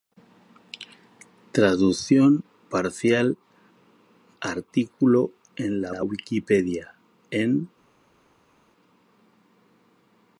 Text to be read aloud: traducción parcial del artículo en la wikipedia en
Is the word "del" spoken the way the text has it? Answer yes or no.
no